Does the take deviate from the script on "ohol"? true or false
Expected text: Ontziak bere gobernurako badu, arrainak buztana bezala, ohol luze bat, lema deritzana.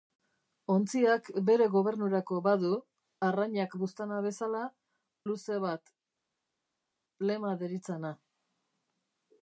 true